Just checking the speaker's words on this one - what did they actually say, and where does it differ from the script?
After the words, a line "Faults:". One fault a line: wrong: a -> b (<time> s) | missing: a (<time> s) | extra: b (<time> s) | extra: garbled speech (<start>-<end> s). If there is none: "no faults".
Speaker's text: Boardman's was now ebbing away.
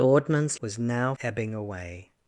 Boardman's was now ebbing away.
Faults:
no faults